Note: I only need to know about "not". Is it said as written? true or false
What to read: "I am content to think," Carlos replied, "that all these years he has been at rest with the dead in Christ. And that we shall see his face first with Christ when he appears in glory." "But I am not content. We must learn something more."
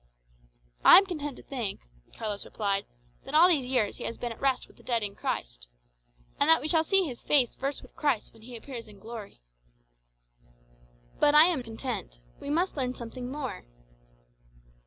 false